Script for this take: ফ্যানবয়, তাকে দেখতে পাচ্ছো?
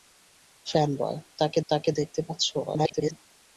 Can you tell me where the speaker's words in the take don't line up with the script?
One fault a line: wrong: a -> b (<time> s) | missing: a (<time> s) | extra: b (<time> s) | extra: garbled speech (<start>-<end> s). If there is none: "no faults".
extra: তাকে (1.7 s)
extra: garbled speech (2.7-3.1 s)